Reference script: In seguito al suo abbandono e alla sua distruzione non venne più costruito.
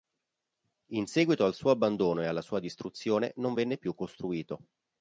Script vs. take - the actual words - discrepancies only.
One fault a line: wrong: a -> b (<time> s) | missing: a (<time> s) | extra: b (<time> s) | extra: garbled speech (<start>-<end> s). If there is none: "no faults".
no faults